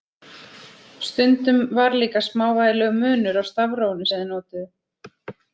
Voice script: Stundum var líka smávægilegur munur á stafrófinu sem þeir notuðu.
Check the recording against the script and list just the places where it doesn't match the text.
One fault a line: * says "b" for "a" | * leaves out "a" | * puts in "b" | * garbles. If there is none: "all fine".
all fine